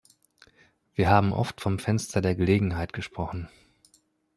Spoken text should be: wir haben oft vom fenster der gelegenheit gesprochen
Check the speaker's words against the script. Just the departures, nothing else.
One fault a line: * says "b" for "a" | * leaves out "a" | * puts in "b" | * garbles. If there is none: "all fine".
all fine